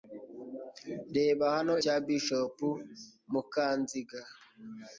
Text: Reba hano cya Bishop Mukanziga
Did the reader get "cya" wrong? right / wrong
right